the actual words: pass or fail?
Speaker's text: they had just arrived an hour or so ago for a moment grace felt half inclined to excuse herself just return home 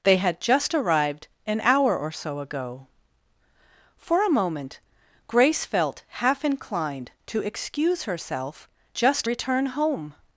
pass